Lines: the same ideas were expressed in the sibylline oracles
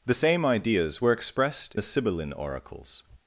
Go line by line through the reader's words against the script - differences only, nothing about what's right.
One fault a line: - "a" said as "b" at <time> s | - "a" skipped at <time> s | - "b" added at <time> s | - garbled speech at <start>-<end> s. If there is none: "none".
- "in" skipped at 1.7 s